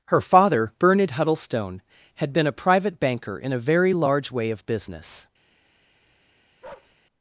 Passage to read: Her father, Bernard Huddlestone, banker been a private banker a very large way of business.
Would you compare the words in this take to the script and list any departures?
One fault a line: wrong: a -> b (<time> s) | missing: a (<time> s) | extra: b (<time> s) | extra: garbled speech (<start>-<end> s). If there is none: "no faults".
wrong: banker -> had (2.1 s)
extra: in (3.4 s)